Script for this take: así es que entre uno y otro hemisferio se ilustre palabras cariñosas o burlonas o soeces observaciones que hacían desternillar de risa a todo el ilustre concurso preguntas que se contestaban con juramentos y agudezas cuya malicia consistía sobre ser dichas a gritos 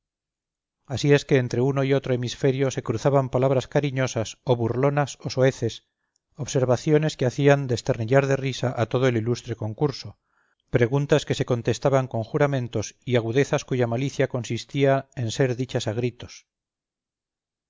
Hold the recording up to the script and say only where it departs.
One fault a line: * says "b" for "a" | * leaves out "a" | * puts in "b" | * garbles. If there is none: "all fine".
* says "cruzaban" for "ilustre"
* says "en" for "sobre"